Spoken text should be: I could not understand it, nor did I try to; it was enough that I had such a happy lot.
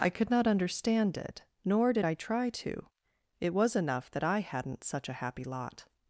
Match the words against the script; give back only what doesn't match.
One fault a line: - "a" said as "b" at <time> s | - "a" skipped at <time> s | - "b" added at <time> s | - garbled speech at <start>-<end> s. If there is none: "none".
- "had" said as "hadn't" at 4.4 s